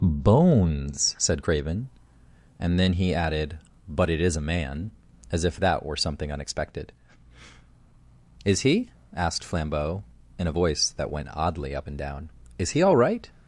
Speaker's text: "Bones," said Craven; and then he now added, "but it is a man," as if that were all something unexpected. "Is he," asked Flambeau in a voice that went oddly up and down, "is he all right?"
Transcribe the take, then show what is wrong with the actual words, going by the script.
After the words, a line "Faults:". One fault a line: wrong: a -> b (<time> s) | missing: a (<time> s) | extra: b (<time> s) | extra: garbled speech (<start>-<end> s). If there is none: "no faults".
"Bones," said Craven; and then he added, "but it is a man," as if that were something unexpected. "Is he," asked Flambeau in a voice that went oddly up and down, "is he all right?"
Faults:
missing: now (3.1 s)
missing: all (6.0 s)